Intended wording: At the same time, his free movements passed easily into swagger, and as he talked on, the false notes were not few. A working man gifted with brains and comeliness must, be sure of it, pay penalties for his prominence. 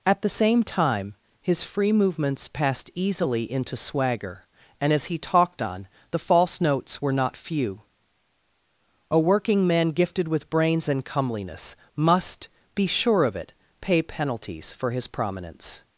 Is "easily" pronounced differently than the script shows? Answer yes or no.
no